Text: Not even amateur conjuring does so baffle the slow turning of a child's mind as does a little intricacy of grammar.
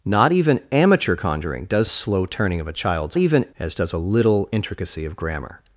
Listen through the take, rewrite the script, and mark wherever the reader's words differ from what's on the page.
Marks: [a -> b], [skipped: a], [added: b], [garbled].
Not even amateur conjuring does [skipped: so baffle the] slow turning of a child's [mind -> even] as does a little intricacy of grammar.